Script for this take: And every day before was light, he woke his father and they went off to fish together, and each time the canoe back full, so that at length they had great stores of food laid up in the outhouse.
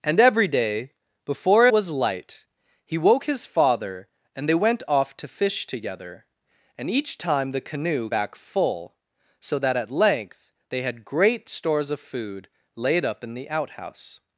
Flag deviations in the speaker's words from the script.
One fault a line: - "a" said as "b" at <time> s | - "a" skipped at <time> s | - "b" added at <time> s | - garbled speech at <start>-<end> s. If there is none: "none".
none